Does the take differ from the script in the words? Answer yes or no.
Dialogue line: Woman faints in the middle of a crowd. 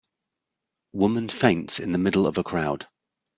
no